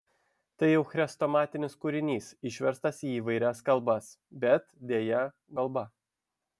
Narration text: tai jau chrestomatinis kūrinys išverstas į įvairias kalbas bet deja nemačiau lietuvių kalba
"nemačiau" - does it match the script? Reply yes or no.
no